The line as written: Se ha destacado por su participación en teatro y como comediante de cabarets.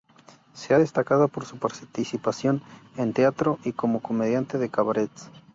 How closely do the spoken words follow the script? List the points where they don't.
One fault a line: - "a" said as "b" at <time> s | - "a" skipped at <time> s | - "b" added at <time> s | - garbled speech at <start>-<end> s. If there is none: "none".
none